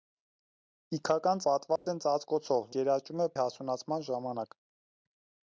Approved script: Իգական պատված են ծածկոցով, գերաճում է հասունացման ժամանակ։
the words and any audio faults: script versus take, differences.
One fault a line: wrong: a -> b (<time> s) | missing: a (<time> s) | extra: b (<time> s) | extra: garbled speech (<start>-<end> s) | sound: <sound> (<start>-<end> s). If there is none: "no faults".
sound: dropout (1.8-1.9 s)